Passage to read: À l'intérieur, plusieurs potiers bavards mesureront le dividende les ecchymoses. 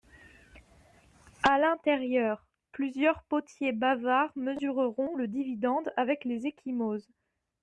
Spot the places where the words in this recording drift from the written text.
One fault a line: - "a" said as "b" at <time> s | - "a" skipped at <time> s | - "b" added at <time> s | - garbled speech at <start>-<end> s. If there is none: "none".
- "avec" added at 6.0 s